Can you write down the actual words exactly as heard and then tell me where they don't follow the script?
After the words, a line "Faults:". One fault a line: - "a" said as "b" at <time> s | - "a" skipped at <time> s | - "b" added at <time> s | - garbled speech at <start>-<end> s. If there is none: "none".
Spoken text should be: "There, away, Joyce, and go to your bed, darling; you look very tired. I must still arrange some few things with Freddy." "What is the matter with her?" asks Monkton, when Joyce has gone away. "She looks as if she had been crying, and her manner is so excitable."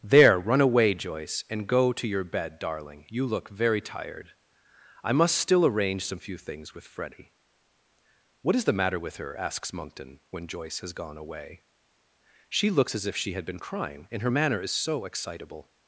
"There, run away, Joyce, and go to your bed, darling; you look very tired. I must still arrange some few things with Freddy." "What is the matter with her?" asks Monkton, when Joyce has gone away. "She looks as if she had been crying, and her manner is so excitable."
Faults:
- "run" added at 0.4 s